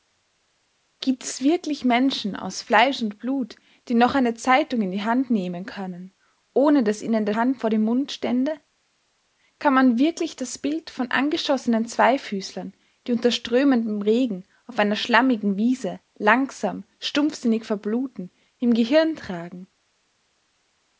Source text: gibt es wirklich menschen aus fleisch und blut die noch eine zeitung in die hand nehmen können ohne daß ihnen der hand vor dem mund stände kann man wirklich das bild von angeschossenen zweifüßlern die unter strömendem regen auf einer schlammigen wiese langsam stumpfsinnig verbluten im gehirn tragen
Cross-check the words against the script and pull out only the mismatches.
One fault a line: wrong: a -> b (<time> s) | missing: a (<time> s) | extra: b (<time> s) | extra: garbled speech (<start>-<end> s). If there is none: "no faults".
no faults